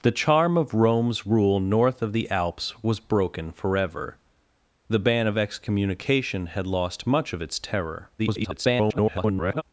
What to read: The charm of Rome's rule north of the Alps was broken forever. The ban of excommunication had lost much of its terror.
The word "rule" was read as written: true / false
true